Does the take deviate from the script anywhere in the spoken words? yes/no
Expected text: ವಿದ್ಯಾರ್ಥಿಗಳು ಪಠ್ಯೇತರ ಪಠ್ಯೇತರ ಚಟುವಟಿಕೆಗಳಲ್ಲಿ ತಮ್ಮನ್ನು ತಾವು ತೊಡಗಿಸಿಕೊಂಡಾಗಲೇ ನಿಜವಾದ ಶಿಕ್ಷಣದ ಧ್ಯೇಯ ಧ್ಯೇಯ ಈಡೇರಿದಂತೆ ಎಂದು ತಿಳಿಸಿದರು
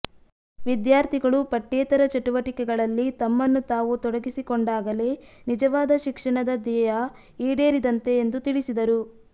yes